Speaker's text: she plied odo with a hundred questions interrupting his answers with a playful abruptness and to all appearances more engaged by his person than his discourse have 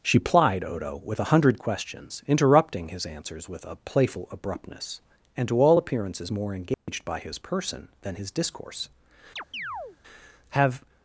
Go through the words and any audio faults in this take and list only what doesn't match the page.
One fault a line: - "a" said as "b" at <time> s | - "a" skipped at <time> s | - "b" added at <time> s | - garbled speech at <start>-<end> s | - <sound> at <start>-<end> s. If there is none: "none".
- dropout at 6.7-6.9 s
- chirp at 9.4-10.0 s